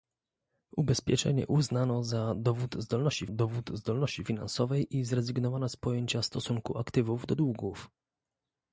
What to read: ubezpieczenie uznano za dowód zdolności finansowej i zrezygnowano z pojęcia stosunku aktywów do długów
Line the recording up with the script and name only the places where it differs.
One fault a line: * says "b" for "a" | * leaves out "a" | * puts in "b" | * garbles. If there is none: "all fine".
* puts in "dowód zdolności"